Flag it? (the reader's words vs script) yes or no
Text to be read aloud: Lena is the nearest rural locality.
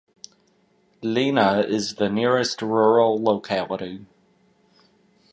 no